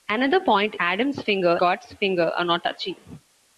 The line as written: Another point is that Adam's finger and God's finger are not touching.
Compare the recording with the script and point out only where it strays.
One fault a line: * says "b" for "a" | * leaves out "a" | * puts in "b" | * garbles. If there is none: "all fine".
* leaves out "is that"
* leaves out "and"